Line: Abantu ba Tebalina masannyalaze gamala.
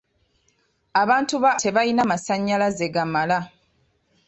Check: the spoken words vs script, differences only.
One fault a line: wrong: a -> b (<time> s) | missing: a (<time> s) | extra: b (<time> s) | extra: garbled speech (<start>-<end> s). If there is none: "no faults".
no faults